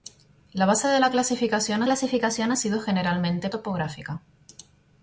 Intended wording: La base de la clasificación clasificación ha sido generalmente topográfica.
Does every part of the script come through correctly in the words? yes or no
yes